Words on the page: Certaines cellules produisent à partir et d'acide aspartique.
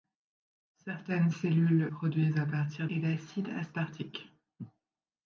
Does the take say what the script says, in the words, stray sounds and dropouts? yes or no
yes